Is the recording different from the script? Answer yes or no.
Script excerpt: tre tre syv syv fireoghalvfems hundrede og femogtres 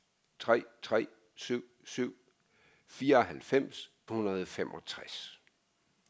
no